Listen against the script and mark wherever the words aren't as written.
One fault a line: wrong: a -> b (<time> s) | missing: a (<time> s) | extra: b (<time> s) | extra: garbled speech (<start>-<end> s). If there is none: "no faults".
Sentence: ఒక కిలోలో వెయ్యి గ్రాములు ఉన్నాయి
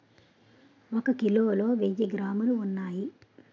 no faults